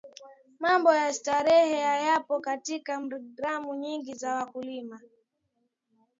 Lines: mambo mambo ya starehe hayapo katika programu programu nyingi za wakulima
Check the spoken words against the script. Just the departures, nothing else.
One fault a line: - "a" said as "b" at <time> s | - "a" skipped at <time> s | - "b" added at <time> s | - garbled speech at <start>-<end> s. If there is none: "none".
- "mambo" skipped at 0.9 s
- "programu" skipped at 3.7 s